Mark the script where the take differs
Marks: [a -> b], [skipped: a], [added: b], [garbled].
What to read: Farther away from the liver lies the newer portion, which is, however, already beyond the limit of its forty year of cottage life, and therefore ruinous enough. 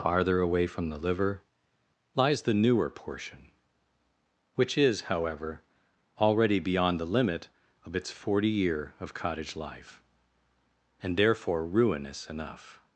Farther away from the liver lies the newer portion, which is, however, already beyond the limit of its forty year of cottage life, and therefore ruinous enough.